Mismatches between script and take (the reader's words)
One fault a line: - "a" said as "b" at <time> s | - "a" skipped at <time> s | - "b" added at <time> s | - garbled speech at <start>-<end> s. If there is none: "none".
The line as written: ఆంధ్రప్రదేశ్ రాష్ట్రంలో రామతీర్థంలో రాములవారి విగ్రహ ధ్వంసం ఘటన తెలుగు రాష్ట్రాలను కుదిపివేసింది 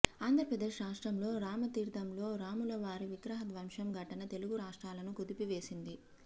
none